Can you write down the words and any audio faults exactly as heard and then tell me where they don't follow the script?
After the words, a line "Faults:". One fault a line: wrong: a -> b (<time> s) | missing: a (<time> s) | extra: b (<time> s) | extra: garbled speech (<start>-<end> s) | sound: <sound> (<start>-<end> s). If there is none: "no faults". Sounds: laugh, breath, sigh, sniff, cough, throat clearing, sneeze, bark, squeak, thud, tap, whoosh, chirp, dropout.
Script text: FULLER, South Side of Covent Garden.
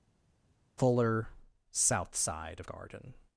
FULLER, South Side of Garden.
Faults:
missing: Covent (2.7 s)